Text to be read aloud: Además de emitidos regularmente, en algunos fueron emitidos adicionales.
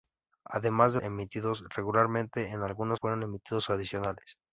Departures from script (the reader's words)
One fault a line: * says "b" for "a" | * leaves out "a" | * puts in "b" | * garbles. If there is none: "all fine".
all fine